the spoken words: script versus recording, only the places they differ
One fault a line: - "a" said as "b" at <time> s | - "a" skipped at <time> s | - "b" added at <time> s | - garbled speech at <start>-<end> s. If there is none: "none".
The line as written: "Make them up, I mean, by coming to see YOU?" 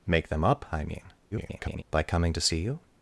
- garbled speech at 1.3-1.8 s